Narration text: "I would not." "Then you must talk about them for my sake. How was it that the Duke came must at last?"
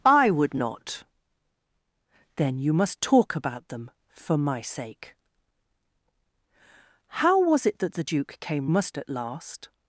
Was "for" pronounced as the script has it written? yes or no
yes